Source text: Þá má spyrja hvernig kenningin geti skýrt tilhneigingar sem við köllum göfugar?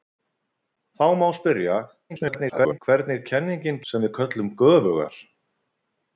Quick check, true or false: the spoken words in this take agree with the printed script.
false